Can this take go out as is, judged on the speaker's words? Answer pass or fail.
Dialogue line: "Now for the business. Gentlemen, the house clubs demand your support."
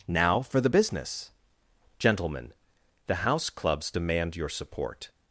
pass